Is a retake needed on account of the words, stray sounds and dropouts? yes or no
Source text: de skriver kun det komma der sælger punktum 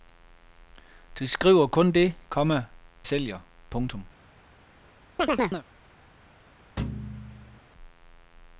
yes